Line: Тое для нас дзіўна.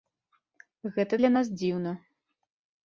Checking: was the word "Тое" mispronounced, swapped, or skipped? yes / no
yes